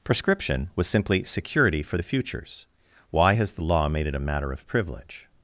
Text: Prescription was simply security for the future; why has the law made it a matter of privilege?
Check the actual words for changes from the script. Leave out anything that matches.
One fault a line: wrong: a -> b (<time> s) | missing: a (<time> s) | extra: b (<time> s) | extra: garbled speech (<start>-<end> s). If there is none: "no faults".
wrong: future -> futures (2.0 s)